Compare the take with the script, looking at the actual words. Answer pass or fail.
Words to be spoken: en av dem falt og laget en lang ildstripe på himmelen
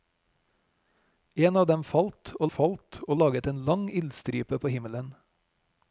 fail